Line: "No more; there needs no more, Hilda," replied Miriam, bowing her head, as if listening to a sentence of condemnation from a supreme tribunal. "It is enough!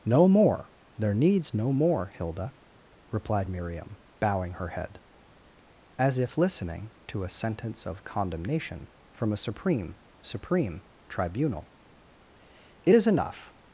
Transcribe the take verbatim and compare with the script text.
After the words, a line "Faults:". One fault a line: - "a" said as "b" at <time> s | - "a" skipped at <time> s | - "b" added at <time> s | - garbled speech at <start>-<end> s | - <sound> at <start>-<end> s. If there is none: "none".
"No more; there needs no more, Hilda," replied Miriam, bowing her head, as if listening to a sentence of condemnation from a supreme supreme tribunal. "It is enough!
Faults:
- "supreme" added at 10.2 s